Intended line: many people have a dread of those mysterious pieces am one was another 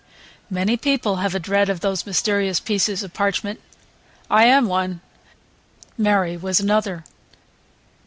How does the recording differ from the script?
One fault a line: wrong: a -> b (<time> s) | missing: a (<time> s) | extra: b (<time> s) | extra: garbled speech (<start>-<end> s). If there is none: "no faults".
extra: of parchment i (3.0 s)
extra: mary (6.0 s)